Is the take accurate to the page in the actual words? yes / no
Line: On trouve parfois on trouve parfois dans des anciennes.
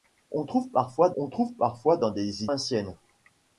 yes